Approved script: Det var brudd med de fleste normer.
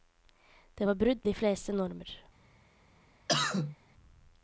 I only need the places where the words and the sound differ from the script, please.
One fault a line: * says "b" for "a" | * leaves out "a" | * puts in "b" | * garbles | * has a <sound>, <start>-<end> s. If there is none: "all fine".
* leaves out "med"
* has a cough, 3.3-3.8 s